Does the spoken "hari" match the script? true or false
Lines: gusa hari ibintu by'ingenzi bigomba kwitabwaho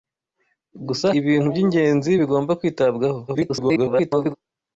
false